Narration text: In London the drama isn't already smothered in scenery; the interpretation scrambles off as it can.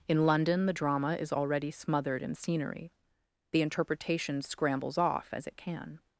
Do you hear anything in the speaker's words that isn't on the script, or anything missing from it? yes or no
yes